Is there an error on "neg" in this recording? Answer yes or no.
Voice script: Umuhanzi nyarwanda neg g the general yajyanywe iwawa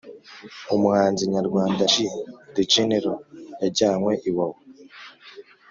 yes